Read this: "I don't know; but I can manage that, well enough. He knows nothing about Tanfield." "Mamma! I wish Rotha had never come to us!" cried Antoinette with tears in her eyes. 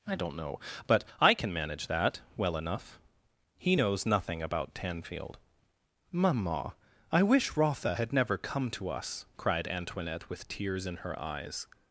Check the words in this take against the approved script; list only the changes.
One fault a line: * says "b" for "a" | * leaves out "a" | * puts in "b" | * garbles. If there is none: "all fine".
all fine